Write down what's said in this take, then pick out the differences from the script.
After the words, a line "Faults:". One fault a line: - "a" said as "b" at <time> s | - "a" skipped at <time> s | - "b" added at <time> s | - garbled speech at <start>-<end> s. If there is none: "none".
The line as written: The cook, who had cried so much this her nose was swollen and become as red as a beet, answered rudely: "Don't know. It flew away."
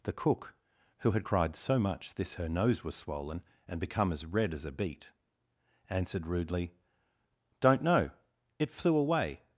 The cook, who had cried so much this her nose was swollen and become as red as a beet, answered rudely: "Don't know. It flew away."
Faults:
none